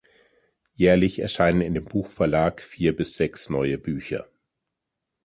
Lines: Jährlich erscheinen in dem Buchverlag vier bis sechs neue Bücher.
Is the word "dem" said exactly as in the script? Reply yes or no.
yes